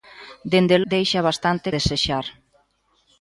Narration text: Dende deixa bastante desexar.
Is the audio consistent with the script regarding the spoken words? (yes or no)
yes